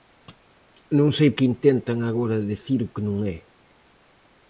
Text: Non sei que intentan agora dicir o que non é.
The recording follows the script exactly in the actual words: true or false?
true